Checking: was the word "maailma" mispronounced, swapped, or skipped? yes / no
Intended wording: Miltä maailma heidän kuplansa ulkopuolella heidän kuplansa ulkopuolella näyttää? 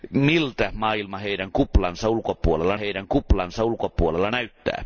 no